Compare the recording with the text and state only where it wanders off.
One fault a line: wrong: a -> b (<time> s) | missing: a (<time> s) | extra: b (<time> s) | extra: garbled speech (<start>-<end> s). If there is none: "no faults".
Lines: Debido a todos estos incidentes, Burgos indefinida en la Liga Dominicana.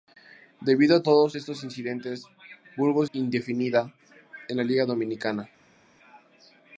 no faults